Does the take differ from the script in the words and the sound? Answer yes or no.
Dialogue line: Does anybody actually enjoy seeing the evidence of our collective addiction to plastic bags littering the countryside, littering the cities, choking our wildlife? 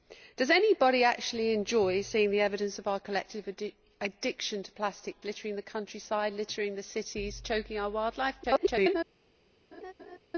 yes